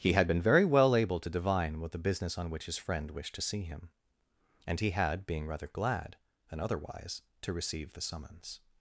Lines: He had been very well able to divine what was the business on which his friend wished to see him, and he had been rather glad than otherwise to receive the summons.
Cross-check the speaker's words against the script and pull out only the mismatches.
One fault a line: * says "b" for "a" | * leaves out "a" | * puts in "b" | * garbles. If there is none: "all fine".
* leaves out "was"
* says "being" for "been"